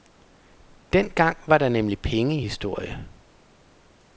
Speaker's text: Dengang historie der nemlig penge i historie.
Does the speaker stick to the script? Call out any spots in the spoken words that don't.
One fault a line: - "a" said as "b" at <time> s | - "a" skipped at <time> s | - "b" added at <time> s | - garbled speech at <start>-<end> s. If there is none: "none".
- "historie" said as "var" at 1.5 s